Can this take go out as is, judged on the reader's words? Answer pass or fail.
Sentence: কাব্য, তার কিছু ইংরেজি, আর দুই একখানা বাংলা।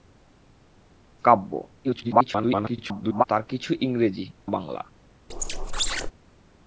fail